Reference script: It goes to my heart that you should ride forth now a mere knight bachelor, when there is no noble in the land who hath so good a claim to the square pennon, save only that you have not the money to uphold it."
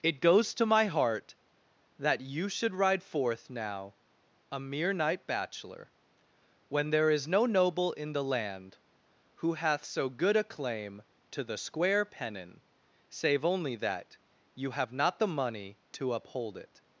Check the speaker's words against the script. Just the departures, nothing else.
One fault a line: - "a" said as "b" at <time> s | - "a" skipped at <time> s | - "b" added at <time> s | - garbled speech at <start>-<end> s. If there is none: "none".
none